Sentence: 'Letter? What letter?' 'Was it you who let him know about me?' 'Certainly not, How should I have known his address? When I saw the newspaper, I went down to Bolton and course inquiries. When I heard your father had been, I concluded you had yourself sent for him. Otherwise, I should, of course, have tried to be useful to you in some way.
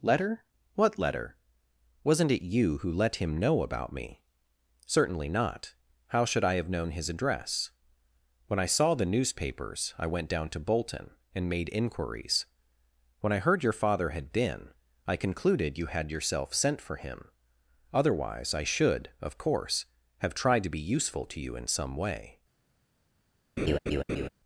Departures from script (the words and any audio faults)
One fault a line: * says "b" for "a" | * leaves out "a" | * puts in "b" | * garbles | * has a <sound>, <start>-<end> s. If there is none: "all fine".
* says "Wasn't" for "Was"
* says "newspapers" for "newspaper"
* says "made" for "course"
* has a laugh, 23.6-24.3 s